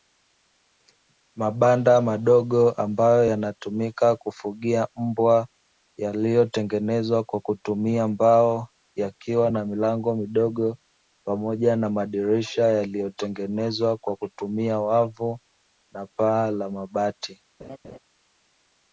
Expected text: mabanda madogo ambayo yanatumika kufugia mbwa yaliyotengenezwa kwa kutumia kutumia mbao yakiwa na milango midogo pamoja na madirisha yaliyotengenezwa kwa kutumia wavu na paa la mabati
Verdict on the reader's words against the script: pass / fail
fail